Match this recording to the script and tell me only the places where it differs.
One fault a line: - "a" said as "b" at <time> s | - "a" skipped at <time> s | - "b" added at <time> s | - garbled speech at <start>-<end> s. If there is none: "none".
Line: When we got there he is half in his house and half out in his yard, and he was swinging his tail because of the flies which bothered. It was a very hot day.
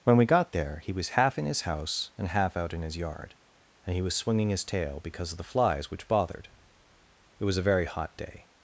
- "is" said as "was" at 0.9 s